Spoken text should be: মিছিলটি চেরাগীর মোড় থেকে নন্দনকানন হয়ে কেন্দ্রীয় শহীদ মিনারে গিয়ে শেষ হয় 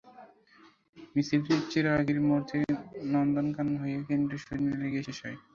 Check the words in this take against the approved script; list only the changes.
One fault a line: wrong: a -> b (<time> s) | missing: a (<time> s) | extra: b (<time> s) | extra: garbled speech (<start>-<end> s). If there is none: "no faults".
no faults